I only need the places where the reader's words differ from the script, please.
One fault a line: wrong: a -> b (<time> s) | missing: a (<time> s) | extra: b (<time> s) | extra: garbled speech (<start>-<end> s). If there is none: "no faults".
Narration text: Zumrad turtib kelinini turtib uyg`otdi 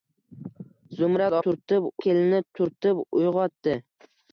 no faults